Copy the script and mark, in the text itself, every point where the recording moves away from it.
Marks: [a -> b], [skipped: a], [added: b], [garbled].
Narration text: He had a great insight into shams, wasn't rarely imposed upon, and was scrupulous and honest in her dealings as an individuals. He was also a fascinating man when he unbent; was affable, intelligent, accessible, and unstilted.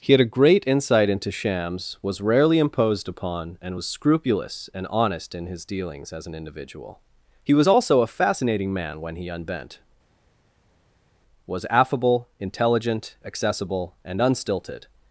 He had a great insight into shams, [wasn't -> was] rarely imposed upon, and was scrupulous and honest in [her -> his] dealings as an [individuals. -> individual] He was also a fascinating man when he unbent; was affable, intelligent, accessible, and unstilted.